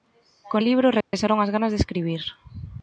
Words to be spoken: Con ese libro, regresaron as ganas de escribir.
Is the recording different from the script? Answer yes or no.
yes